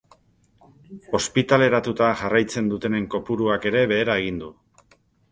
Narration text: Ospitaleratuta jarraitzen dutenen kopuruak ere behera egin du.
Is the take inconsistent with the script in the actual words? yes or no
no